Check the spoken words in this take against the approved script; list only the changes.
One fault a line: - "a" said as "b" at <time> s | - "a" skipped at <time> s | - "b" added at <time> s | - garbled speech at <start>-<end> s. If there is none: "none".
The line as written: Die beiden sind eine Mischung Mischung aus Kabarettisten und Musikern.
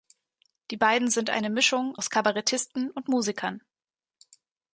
- "Mischung" skipped at 1.9 s